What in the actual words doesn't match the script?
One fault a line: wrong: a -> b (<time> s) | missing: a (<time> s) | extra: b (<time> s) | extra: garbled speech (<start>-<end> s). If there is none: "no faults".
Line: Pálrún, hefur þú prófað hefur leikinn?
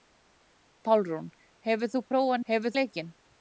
no faults